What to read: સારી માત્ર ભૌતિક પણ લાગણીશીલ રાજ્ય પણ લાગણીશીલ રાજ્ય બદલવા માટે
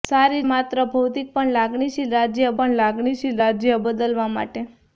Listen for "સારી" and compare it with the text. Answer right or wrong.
right